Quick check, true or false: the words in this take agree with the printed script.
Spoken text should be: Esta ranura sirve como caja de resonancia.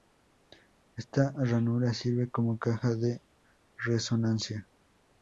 true